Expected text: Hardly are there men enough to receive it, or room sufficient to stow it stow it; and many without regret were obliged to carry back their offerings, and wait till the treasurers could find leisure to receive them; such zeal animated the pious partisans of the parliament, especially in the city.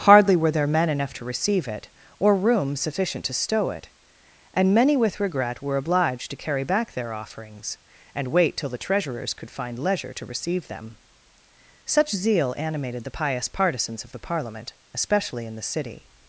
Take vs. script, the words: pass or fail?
fail